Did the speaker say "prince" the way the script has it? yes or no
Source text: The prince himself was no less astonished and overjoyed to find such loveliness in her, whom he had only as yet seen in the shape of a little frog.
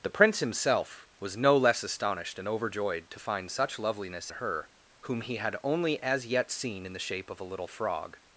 yes